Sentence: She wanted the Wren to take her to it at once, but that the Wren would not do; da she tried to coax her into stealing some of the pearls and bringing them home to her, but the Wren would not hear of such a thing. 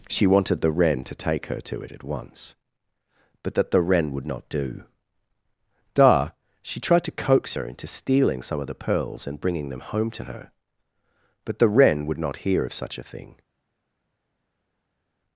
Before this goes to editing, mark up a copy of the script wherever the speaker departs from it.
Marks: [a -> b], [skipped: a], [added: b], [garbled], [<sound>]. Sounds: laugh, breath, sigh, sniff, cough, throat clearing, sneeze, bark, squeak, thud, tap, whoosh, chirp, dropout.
She wanted the Wren to take her to it at once, but that the Wren would not do; da she tried to coax her into stealing some of the pearls and bringing them home to her, but the Wren would not hear of such a thing.